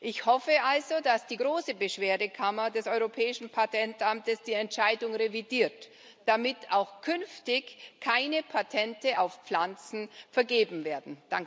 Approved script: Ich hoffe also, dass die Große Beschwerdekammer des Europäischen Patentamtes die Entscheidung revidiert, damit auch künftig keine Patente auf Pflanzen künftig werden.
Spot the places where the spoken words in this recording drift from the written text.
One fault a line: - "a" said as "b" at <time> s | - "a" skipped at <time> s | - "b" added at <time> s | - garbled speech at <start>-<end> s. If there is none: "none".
- "künftig" said as "vergeben" at 10.3 s